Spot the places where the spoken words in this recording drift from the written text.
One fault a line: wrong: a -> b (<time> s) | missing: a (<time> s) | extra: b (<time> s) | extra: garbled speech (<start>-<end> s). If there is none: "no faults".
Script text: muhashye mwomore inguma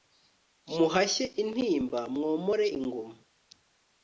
extra: intimba (1.4 s)